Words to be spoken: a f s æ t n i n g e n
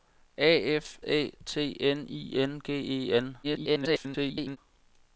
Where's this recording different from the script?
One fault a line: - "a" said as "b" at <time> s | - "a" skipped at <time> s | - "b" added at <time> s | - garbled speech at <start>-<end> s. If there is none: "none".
- "s" skipped at 1.0 s
- garbled speech at 3.4-4.6 s